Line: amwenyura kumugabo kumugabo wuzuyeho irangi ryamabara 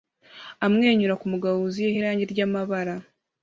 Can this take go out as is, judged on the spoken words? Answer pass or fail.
fail